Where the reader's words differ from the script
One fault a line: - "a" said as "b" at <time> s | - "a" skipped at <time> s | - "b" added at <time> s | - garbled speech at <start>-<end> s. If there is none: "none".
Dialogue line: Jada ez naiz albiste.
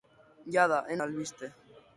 - "naiz" skipped at 1.0 s